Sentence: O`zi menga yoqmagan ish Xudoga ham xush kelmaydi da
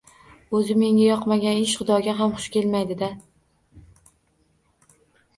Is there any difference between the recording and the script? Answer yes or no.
no